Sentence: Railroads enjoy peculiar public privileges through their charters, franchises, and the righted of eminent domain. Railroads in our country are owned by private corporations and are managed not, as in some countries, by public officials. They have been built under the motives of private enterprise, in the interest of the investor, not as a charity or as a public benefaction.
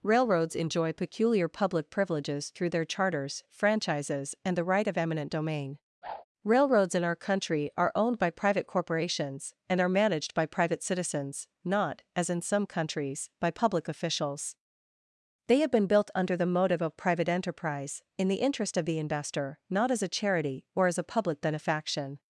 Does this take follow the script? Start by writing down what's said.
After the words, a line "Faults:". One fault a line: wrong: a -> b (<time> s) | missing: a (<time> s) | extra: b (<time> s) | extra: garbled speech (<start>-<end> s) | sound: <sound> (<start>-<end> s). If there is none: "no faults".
Railroads enjoy peculiar public privileges through their charters, franchises, and the right of eminent domain. Railroads in our country are owned by private corporations and are managed by private citizens, not, as in some countries, by public officials. They have been built under the motive of private enterprise, in the interest of the investor, not as a charity or as a public benefaction.
Faults:
wrong: righted -> right (4.6 s)
sound: whoosh (6.0-6.2 s)
extra: by private citizens (10.3 s)
wrong: motives -> motive (16.5 s)